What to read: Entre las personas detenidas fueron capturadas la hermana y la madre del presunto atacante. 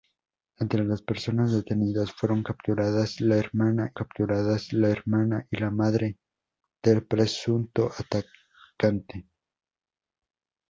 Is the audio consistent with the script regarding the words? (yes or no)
no